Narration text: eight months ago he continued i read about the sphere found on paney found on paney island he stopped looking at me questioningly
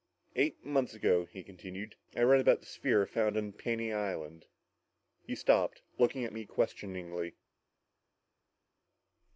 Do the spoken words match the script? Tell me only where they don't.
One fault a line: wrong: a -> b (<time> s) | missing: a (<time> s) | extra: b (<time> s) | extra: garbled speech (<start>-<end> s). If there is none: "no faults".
missing: found on paney (3.9 s)